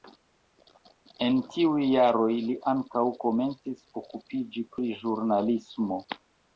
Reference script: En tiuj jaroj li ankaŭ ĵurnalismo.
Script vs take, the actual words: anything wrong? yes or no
yes